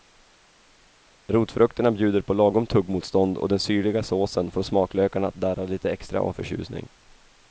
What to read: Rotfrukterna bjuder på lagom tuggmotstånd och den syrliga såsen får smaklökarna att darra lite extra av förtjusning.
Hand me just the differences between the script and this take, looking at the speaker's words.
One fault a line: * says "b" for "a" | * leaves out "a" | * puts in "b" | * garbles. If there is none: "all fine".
all fine